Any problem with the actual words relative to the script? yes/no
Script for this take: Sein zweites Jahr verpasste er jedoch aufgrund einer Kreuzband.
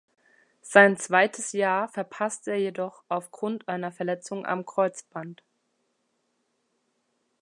yes